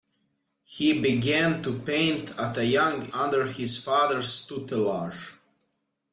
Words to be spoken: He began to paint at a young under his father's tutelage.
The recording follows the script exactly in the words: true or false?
true